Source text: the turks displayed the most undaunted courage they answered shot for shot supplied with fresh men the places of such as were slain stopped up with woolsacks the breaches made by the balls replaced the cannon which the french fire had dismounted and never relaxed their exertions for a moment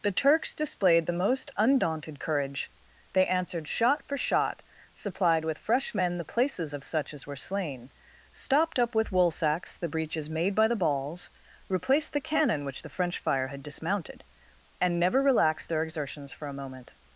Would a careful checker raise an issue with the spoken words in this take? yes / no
no